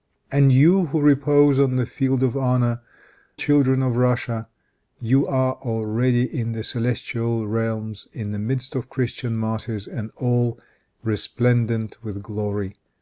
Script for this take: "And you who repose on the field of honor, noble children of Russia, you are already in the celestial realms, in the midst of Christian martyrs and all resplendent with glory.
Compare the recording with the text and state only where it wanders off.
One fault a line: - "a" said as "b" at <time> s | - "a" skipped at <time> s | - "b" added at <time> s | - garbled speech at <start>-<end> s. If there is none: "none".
- "noble" skipped at 2.8 s